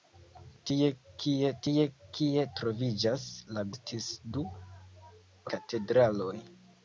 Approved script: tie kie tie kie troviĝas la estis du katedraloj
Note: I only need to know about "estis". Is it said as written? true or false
true